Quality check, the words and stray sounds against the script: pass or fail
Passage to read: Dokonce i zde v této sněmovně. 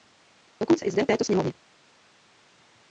pass